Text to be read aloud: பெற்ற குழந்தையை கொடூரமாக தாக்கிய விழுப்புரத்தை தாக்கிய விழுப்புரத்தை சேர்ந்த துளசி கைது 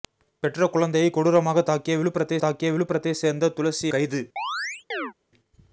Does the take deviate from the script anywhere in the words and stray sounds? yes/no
yes